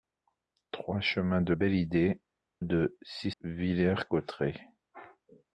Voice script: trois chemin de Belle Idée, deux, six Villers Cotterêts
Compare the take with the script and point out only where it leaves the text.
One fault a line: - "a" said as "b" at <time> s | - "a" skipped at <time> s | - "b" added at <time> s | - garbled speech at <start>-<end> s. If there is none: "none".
none